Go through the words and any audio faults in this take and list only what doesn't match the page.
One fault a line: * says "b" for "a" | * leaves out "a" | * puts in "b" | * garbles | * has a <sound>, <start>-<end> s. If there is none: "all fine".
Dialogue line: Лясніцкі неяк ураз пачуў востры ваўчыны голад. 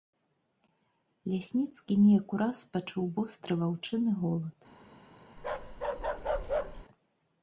* has a bark, 5.4-6.9 s